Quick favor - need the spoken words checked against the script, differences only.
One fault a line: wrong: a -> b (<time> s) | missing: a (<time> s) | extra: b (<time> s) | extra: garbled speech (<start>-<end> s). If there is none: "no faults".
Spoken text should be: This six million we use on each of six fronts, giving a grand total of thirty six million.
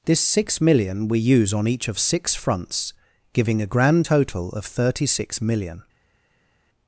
no faults